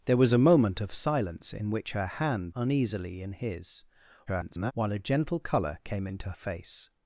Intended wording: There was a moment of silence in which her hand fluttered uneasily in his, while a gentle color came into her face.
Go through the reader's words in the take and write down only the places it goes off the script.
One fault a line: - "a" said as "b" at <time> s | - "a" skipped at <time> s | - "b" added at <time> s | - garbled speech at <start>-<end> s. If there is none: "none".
- "fluttered" skipped at 2.5 s
- garbled speech at 4.3-4.7 s
- "her" skipped at 6.3 s